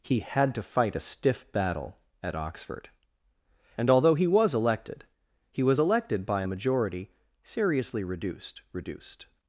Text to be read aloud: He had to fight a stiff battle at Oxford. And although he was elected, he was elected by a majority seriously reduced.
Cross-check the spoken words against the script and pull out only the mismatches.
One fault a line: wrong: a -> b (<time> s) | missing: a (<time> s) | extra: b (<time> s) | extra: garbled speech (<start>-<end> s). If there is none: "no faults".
extra: reduced (8.7 s)